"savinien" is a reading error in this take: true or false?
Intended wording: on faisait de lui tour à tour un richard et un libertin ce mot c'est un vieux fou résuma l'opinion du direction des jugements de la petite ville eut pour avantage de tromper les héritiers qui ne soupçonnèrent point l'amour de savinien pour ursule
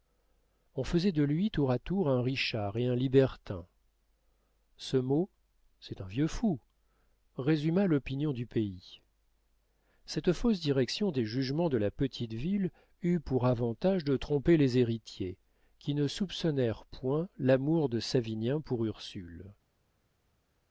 false